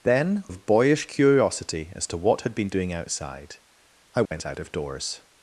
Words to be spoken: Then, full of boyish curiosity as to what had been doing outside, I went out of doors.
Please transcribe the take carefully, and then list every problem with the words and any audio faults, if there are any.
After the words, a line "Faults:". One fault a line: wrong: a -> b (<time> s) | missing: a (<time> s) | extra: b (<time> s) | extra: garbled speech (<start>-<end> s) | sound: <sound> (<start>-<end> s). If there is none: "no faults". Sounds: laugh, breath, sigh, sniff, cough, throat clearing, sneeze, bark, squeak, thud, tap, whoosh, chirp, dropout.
Then, of boyish curiosity as to what had been doing outside, I went out of doors.
Faults:
missing: full (0.4 s)
sound: dropout (4.3-4.3 s)